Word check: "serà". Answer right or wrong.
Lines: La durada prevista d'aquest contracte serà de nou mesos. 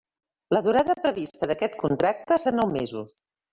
wrong